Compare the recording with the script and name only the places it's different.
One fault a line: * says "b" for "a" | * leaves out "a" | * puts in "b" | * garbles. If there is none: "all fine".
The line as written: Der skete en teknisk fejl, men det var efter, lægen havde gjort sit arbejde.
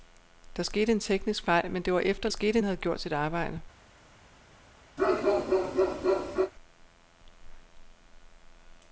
* says "skete" for "lægen"